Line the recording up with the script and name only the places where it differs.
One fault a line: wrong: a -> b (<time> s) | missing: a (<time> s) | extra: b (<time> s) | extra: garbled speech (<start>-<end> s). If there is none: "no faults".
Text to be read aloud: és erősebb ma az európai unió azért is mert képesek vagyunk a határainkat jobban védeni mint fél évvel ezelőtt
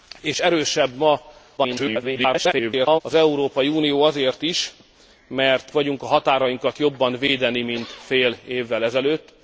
extra: garbled speech (1.6-3.0 s)
missing: képesek (5.7 s)